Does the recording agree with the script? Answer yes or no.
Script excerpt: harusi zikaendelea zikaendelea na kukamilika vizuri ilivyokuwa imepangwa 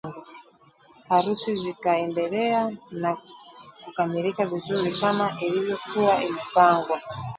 no